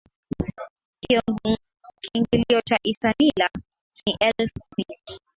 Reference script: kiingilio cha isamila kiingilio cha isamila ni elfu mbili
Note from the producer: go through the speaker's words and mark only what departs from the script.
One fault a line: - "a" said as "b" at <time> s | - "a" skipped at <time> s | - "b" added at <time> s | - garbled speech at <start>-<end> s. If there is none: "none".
- "kiingilio cha isamila" skipped at 3.5 s